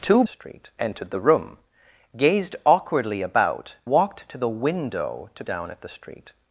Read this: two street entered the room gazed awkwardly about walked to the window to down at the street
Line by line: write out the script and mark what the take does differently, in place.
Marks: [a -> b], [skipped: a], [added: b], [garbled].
two street entered the room gazed awkwardly about walked to the window to down at the street